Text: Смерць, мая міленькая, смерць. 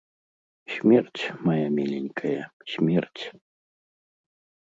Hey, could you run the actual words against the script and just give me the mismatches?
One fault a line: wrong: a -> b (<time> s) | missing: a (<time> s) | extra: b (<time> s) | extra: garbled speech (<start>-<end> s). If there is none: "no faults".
no faults